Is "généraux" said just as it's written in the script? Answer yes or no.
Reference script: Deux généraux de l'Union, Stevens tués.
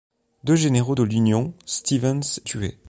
yes